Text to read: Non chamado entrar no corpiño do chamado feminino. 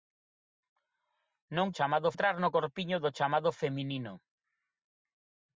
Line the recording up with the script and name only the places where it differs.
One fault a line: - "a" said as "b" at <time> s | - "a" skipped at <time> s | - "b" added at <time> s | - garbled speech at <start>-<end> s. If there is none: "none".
none